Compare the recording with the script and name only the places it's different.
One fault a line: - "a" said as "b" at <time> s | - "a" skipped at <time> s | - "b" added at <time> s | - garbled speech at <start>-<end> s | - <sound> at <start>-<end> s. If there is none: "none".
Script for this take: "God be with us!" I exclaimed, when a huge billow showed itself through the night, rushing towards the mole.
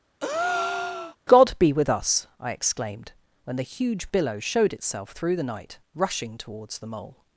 - breath at 0.2-1.2 s
- "a" said as "the" at 3.6 s